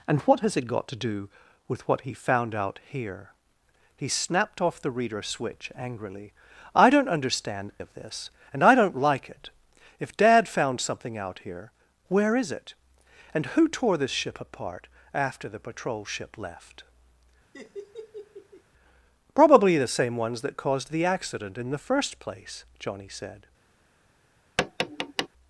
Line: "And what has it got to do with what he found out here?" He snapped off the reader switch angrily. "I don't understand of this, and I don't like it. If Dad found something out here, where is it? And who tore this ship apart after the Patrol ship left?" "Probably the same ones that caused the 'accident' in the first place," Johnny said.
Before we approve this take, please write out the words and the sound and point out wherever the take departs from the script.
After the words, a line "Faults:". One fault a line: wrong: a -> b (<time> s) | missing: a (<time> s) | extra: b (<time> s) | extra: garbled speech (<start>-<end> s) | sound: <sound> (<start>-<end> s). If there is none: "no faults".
"And what has it got to do with what he found out here?" He snapped off the reader switch angrily. "I don't understand of this, and I don't like it. If Dad found something out here, where is it? And who tore this ship apart after the Patrol ship left?" "Probably the same ones that caused the 'accident' in the first place," Johnny said.
Faults:
sound: laugh (17.5-18.6 s)
sound: tap (24.6-25.3 s)